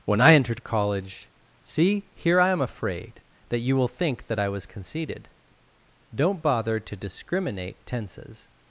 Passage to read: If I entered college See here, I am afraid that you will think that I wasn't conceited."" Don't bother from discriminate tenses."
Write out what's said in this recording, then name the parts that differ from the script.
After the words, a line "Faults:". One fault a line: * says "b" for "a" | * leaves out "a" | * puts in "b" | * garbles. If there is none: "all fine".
When I entered college See here, I am afraid that you will think that I was conceited."" Don't bother to discriminate tenses."
Faults:
* says "When" for "If"
* says "was" for "wasn't"
* says "to" for "from"